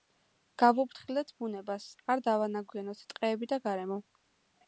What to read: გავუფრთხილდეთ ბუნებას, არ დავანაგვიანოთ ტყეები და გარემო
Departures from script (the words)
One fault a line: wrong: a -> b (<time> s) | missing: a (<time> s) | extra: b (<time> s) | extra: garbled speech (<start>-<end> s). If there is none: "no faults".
no faults